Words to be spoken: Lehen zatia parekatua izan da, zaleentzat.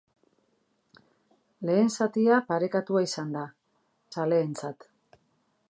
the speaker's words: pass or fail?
pass